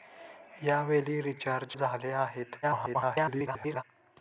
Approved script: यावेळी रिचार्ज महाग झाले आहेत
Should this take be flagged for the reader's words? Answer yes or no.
yes